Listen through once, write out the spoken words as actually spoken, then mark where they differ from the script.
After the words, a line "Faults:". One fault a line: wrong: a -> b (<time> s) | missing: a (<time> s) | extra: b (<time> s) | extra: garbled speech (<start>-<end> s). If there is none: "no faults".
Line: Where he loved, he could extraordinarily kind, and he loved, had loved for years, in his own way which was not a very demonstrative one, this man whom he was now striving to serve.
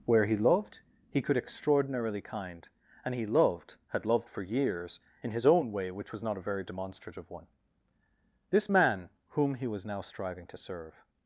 Where he loved, he could extraordinarily kind, and he loved, had loved for years, in his own way which was not a very demonstrative one, this man whom he was now striving to serve.
Faults:
no faults